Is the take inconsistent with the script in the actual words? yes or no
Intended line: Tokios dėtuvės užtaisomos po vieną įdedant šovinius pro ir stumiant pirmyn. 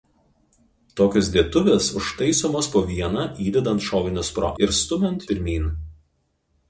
no